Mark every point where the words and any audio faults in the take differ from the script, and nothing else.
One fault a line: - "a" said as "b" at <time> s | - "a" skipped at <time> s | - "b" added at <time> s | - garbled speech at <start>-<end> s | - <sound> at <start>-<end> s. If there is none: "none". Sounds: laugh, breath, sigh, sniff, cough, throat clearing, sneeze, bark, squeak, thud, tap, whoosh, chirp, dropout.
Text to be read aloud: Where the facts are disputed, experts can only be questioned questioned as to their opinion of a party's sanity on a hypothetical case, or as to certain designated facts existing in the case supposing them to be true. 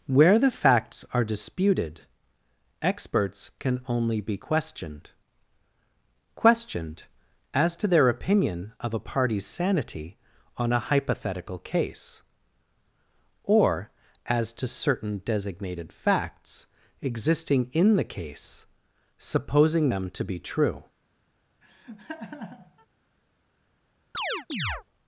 - laugh at 21.6-22.9 s
- chirp at 24.1-24.8 s